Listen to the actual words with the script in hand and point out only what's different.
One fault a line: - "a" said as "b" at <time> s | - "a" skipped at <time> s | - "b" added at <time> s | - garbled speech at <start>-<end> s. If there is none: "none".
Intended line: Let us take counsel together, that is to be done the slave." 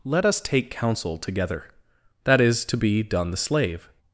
none